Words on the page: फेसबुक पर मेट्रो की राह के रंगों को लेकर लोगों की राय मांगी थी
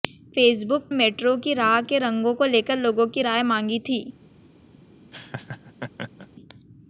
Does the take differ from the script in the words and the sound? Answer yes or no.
yes